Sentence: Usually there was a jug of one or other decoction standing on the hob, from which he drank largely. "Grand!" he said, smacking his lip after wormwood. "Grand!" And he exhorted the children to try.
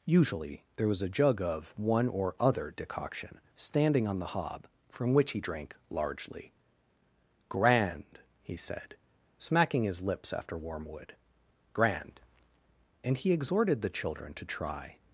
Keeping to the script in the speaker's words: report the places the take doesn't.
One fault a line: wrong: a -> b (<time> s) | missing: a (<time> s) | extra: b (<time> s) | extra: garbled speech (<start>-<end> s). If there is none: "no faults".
wrong: lip -> lips (10.0 s)